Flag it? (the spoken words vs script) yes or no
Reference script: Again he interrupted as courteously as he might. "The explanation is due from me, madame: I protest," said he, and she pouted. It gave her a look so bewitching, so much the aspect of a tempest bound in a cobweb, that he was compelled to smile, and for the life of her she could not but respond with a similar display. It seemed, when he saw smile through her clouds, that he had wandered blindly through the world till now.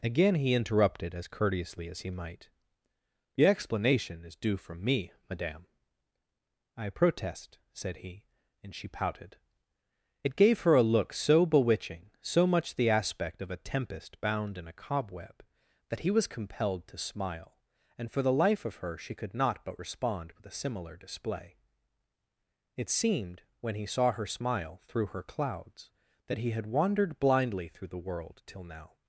yes